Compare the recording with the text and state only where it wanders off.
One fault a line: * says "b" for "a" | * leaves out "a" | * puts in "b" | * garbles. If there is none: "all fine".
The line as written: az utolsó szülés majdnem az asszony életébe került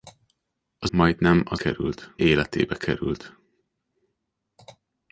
* leaves out "utolsó szülés"
* says "került" for "asszony"